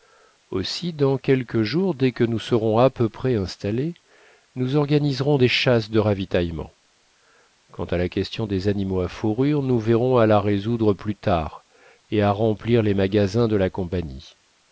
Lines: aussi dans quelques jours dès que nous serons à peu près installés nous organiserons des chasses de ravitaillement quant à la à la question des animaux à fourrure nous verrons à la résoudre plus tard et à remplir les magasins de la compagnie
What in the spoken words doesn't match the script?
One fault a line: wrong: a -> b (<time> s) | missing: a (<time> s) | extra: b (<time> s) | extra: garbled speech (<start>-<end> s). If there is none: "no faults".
missing: à la (8.1 s)